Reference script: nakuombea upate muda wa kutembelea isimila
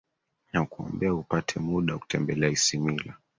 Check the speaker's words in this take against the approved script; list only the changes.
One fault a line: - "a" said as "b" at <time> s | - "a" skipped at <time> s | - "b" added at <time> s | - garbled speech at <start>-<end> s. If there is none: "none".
none